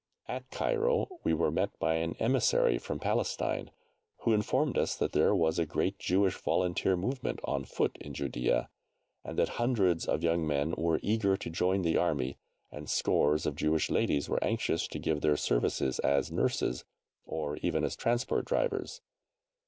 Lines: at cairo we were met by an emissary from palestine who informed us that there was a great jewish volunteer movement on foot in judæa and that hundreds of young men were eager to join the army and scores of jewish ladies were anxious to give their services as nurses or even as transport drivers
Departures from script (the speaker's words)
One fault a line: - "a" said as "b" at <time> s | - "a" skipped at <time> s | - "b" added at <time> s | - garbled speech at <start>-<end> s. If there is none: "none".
none